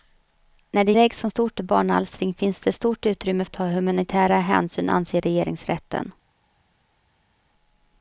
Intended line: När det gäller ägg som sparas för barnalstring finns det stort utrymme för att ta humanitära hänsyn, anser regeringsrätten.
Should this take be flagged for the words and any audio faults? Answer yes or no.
yes